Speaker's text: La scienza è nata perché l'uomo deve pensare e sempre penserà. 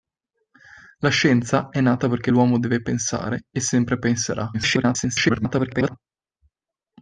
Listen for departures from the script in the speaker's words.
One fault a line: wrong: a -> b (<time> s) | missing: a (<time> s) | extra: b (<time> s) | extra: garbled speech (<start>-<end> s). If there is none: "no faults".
extra: garbled speech (4.5-6.0 s)